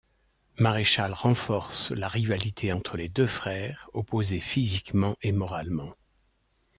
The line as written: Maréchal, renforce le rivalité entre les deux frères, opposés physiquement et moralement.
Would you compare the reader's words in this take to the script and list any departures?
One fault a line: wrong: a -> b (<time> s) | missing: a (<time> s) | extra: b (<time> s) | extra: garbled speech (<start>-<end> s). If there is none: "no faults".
wrong: le -> la (1.9 s)